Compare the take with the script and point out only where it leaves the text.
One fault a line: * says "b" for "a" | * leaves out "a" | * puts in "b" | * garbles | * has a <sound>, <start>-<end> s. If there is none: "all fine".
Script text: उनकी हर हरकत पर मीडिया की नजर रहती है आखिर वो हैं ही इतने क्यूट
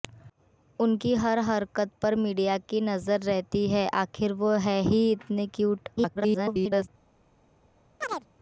* garbles
* has a chirp, 8.0-8.3 s